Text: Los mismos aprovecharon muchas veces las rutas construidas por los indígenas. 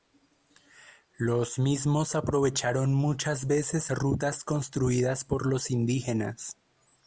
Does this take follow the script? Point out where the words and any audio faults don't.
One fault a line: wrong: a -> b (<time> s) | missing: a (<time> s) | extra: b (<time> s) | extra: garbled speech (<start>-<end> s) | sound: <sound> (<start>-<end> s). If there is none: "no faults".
missing: las (3.9 s)